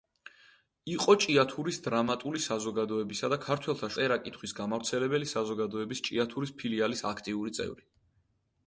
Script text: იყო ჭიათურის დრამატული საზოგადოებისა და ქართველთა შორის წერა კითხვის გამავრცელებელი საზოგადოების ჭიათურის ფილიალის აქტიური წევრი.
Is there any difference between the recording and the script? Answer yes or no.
yes